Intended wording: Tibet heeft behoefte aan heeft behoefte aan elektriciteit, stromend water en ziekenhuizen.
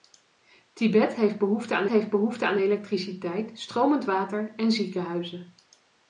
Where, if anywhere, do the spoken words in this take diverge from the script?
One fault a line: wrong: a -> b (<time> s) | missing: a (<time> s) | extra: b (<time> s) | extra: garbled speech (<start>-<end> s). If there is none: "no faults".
no faults